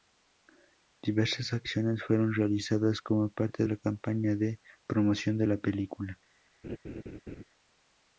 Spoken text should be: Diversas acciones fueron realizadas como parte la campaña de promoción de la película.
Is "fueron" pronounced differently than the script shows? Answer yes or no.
no